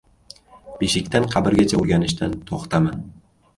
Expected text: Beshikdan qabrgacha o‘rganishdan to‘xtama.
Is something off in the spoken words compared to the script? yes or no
no